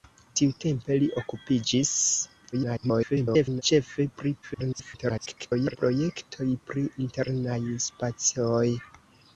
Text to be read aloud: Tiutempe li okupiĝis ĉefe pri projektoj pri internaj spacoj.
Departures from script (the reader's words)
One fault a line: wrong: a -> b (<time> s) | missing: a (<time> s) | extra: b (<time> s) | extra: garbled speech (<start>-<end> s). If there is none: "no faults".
extra: garbled speech (2.5-3.6 s)
extra: garbled speech (4.4-5.8 s)